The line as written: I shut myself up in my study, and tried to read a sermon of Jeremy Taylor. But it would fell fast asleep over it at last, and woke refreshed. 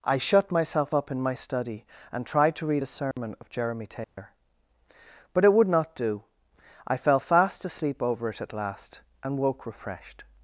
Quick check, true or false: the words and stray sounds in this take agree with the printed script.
false